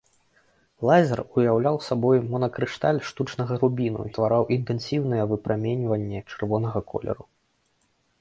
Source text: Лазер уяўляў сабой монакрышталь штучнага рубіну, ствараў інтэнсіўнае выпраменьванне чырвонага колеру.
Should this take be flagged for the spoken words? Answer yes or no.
no